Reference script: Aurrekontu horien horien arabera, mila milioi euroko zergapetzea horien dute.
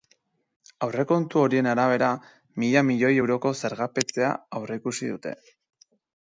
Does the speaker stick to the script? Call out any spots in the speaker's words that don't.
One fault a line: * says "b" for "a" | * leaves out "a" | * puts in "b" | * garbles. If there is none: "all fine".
* leaves out "horien"
* says "aurreikusi" for "horien"